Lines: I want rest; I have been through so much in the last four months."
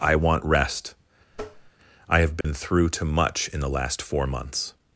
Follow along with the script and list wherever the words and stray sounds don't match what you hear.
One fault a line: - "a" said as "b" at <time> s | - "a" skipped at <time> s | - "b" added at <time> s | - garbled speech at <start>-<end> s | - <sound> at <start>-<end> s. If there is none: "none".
- tap at 1.3-1.7 s
- dropout at 2.4-2.4 s
- "so" said as "too" at 2.9 s